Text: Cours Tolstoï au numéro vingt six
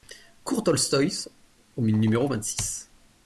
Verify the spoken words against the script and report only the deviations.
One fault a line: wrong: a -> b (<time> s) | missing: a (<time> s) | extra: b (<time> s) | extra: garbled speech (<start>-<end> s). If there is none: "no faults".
no faults